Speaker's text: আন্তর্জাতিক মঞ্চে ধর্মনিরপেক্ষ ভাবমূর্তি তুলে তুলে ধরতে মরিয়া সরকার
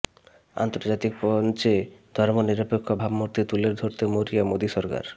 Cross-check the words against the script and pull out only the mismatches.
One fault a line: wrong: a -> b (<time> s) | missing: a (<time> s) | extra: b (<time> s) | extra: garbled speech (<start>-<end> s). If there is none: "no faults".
missing: তুলে (3.7 s)
extra: মোদী (4.4 s)